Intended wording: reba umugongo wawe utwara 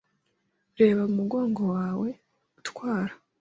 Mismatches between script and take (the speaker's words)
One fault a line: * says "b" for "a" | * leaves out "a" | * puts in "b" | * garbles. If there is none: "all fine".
all fine